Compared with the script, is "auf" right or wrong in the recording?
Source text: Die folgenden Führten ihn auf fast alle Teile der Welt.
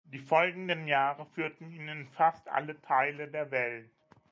wrong